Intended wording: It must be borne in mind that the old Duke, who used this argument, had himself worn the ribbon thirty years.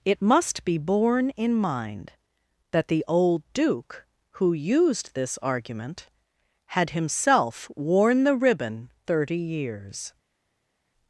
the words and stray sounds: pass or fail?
pass